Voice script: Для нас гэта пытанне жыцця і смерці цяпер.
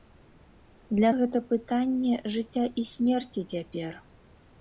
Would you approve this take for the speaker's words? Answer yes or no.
no